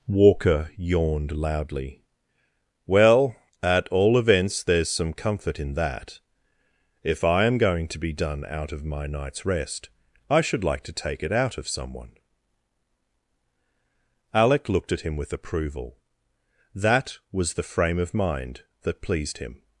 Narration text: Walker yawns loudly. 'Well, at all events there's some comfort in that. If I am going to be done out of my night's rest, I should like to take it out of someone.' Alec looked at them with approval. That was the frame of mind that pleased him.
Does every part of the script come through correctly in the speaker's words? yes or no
no